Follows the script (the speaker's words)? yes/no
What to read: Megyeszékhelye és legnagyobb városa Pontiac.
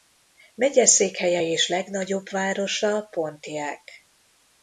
yes